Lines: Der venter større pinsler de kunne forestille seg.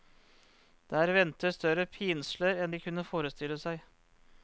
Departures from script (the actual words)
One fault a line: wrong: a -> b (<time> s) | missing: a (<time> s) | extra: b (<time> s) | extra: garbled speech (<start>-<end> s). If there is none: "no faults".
extra: enn (2.7 s)